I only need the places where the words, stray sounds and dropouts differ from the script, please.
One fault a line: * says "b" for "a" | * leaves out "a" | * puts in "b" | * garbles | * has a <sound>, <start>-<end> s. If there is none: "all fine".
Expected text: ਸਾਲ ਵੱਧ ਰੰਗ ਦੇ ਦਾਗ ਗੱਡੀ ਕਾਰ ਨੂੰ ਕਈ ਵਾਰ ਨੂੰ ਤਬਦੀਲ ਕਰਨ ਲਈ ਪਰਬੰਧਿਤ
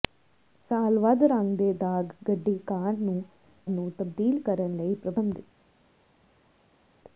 * leaves out "ਕਈ ਵਾਰ"